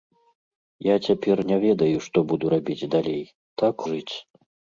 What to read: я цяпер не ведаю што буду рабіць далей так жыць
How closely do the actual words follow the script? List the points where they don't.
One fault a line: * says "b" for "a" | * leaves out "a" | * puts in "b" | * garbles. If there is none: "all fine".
all fine